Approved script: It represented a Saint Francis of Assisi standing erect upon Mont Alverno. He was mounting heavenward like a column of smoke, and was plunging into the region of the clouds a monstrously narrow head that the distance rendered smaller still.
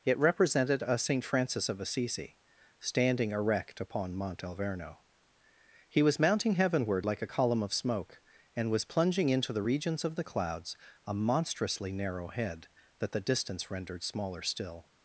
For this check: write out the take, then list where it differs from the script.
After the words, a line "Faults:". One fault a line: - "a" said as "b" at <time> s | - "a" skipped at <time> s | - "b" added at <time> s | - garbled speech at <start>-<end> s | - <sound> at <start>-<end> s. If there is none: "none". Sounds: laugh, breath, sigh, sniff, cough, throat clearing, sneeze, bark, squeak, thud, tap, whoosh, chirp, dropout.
It represented a Saint Francis of Assisi standing erect upon Mont Alverno. He was mounting heavenward like a column of smoke, and was plunging into the regions of the clouds a monstrously narrow head that the distance rendered smaller still.
Faults:
- "region" said as "regions" at 9.6 s